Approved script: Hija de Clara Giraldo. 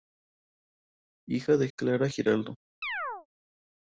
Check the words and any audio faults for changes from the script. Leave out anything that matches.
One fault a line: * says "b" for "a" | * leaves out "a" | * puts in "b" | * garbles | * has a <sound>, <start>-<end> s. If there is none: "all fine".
* has a chirp, 2.8-3.3 s